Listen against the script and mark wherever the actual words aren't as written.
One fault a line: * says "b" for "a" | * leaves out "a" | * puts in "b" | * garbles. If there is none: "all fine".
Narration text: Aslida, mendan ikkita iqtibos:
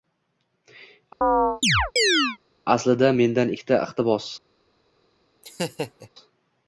all fine